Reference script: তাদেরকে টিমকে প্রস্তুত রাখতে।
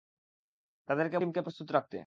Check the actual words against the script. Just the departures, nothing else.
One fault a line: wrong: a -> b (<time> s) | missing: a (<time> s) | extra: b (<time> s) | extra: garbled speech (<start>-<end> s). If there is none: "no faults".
no faults